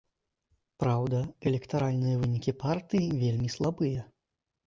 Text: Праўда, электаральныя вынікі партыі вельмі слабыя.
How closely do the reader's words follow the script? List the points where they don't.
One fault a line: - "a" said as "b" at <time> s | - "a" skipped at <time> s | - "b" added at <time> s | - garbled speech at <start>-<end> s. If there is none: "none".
none